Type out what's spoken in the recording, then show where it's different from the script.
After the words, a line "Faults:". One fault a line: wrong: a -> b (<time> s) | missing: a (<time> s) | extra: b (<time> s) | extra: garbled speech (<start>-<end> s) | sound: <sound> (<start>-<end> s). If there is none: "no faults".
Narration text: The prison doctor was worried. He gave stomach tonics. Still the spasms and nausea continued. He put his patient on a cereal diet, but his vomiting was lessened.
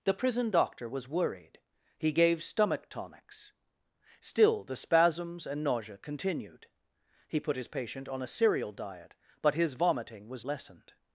The prison doctor was worried. He gave stomach tonics. Still the spasms and nausea continued. He put his patient on a cereal diet, but his vomiting was lessened.
Faults:
no faults